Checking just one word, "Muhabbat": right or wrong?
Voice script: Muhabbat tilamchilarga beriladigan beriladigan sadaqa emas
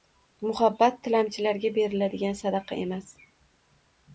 right